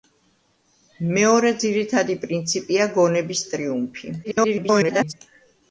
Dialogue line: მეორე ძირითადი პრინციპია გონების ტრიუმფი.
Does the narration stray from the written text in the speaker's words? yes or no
yes